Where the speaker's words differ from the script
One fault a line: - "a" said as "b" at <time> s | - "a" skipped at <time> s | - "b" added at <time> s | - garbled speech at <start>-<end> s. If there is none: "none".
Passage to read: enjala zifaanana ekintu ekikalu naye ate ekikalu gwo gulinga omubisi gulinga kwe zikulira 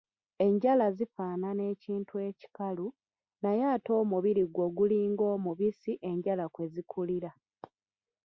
- "ekikalu" said as "omubiri" at 4.0 s
- "gulinga" said as "enjala" at 6.1 s